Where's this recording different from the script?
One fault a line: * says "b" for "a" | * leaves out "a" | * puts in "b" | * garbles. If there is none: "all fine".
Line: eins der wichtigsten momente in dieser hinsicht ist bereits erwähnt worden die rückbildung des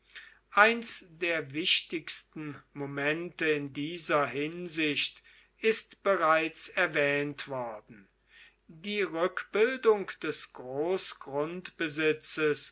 all fine